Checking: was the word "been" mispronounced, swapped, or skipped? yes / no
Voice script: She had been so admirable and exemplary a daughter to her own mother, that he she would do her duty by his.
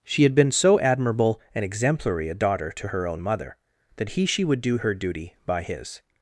no